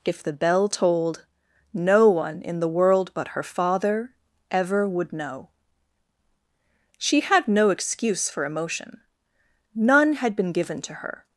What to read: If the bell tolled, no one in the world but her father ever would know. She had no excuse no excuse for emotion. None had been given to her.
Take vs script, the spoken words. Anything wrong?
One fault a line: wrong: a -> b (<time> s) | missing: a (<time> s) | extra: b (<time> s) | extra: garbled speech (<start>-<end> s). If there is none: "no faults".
missing: no excuse (8.3 s)